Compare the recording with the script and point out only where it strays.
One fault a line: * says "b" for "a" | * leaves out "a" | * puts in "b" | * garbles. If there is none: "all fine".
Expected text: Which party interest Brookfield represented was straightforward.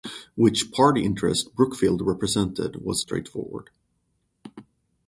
all fine